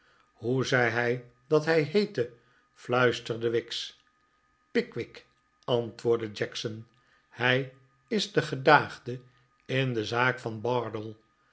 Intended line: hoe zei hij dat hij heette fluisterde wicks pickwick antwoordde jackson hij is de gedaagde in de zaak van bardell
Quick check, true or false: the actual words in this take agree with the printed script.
true